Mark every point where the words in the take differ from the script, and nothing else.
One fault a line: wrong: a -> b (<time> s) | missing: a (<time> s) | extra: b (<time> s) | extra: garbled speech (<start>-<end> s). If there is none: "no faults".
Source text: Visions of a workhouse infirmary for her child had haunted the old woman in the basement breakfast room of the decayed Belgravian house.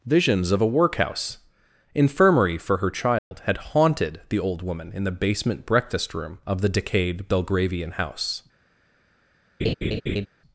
no faults